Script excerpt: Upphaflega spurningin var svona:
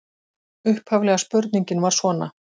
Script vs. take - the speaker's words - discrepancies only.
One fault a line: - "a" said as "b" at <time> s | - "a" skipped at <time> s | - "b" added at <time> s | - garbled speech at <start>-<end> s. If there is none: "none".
none